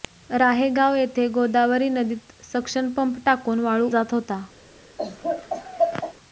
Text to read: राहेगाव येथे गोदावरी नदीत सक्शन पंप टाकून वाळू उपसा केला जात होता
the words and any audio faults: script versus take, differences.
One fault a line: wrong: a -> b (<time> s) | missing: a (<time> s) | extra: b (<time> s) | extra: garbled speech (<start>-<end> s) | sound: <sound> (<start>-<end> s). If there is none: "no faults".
missing: उपसा केला (3.9 s)
sound: laugh (5.0-6.1 s)